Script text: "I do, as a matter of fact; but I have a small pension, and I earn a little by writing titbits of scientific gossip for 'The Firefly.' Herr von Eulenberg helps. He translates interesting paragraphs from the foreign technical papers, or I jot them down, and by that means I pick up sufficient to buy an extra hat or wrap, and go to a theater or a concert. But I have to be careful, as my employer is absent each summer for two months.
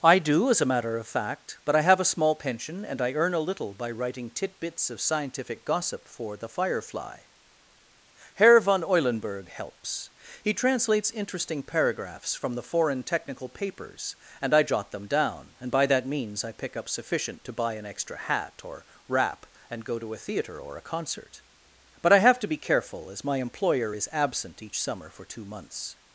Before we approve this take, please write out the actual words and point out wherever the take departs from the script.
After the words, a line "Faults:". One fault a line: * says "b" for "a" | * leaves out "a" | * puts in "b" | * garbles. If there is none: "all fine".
"I do, as a matter of fact; but I have a small pension, and I earn a little by writing titbits of scientific gossip for 'The Firefly.' Herr von Eulenberg helps. He translates interesting paragraphs from the foreign technical papers, and I jot them down, and by that means I pick up sufficient to buy an extra hat or wrap, and go to a theater or a concert. But I have to be careful, as my employer is absent each summer for two months.
Faults:
* says "and" for "or"